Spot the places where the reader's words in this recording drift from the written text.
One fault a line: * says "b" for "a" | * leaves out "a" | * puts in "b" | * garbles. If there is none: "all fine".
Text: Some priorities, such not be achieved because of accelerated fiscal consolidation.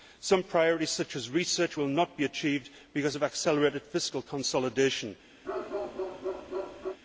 * puts in "as research will"